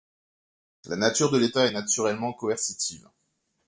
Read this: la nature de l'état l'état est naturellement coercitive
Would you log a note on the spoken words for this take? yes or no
yes